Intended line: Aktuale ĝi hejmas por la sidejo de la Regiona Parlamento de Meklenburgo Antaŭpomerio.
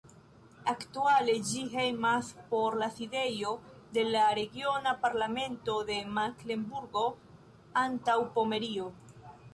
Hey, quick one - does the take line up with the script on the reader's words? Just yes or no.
yes